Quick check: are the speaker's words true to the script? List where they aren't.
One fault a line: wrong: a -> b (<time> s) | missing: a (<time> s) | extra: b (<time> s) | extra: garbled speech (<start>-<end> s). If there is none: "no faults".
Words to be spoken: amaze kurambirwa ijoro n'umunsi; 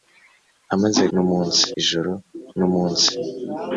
wrong: kurambirwa -> n'umunsi (1.1 s)